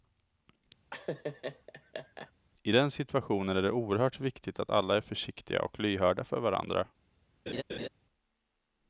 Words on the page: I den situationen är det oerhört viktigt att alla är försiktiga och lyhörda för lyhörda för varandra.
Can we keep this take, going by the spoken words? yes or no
no